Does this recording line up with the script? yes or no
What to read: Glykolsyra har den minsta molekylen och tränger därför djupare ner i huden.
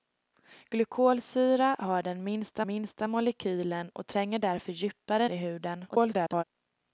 no